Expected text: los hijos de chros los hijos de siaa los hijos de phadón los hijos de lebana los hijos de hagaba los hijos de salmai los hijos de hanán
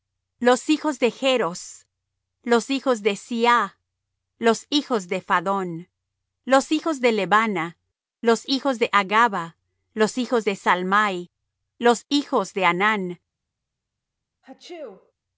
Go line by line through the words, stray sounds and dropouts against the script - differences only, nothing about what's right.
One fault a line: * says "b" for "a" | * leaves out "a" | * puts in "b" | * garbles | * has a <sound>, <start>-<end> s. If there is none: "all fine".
* has a sneeze, 14.4-15.1 s